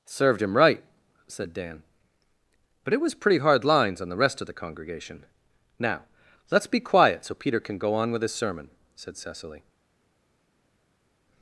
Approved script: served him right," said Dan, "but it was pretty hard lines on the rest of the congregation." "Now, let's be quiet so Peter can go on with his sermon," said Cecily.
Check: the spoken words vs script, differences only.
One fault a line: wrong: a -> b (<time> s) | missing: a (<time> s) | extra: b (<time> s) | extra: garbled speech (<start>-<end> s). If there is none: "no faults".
no faults